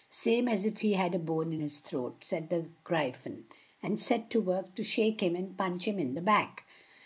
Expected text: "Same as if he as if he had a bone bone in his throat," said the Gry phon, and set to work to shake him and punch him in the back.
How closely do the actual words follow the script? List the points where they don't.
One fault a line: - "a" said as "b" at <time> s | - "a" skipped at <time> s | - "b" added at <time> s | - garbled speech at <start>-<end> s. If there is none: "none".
- "as if he" skipped at 0.9 s
- "bone" skipped at 1.5 s